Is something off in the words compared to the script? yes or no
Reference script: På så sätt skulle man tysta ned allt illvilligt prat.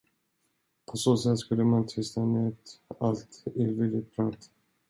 no